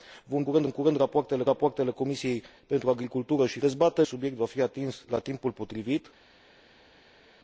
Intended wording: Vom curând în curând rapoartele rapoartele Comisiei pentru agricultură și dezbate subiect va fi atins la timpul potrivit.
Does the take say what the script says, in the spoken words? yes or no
yes